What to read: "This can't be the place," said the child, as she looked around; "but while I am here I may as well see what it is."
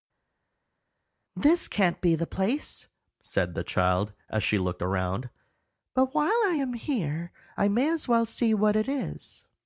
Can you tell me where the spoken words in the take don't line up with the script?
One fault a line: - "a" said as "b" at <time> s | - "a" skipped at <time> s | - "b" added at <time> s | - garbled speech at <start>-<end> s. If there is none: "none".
none